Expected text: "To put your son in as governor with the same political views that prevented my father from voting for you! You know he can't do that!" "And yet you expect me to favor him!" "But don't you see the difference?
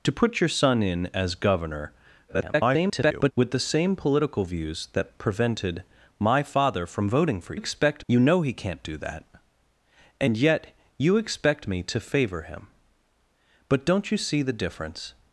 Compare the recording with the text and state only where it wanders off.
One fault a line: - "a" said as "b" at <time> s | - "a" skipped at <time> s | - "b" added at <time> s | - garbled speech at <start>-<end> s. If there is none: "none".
- garbled speech at 2.3-3.3 s
- "you" said as "expect" at 7.5 s